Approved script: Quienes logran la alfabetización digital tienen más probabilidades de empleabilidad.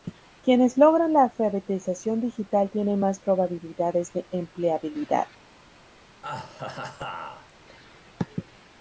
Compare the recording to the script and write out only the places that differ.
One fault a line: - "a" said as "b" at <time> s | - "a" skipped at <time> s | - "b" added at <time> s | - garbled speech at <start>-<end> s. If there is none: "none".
none